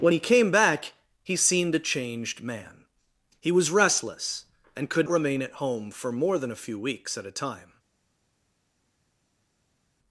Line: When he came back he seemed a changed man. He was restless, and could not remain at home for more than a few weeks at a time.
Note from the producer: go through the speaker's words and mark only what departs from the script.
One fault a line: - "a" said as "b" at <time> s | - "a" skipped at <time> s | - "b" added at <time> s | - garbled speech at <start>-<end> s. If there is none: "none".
- "not" skipped at 5.1 s